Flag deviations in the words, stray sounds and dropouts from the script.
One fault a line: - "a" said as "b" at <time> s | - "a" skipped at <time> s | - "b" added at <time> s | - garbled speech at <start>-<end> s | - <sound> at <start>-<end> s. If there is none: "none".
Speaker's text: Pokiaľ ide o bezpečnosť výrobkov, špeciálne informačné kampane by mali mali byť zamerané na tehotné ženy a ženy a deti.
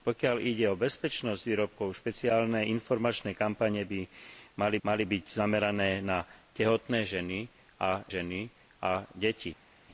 none